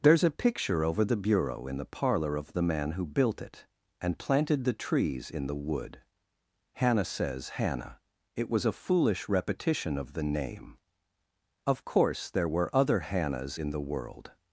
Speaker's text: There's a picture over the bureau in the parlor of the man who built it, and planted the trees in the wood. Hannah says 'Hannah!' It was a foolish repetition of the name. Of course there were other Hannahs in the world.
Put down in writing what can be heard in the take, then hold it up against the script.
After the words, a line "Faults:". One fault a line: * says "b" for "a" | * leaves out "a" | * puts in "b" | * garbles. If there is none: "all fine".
There's a picture over the bureau in the parlor of the man who built it, and planted the trees in the wood. Hannah says 'Hannah!' It was a foolish repetition of the name. Of course there were other Hannahs in the world.
Faults:
all fine